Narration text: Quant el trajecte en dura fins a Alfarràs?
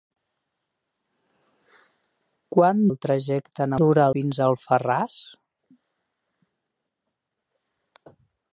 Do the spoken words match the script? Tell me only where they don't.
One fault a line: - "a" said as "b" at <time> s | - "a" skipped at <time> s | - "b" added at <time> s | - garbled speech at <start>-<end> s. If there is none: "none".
none